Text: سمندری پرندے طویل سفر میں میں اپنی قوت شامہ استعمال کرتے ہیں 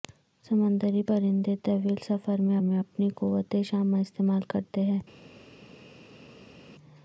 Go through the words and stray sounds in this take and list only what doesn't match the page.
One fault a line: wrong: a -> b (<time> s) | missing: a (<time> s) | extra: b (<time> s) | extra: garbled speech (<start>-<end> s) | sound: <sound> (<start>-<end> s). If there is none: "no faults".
no faults